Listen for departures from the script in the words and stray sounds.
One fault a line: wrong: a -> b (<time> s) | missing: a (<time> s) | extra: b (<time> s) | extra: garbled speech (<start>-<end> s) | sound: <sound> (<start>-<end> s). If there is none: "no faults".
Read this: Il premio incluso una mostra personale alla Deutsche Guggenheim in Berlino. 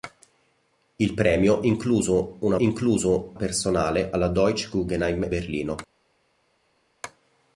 wrong: mostra -> incluso (2.6 s)
missing: in (5.3 s)